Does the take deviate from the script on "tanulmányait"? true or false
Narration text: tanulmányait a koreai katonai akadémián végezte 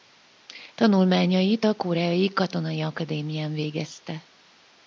false